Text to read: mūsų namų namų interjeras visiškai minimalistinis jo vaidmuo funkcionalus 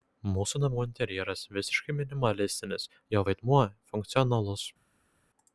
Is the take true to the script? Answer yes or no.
no